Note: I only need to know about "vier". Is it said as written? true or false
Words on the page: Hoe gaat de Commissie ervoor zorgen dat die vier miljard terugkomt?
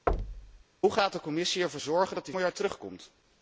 false